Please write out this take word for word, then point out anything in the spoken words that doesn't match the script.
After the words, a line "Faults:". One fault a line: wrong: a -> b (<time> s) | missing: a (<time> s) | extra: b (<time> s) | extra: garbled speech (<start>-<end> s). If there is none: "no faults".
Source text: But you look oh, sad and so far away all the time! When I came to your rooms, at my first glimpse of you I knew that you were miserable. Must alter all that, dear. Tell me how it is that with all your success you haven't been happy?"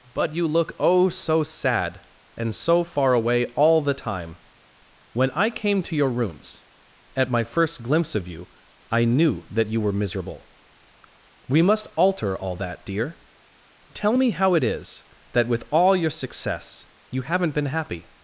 But you look oh, so sad and so far away all the time! When I came to your rooms, at my first glimpse of you I knew that you were miserable. We must alter all that, dear. Tell me how it is that with all your success you haven't been happy?"
Faults:
extra: so (1.1 s)
extra: We (11.5 s)